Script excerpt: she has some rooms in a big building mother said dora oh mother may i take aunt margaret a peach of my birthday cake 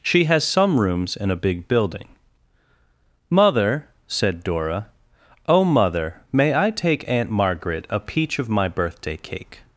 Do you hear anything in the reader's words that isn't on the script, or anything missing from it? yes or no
no